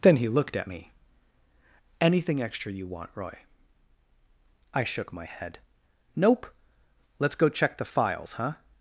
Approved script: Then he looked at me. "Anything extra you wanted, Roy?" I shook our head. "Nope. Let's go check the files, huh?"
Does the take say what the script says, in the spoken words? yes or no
no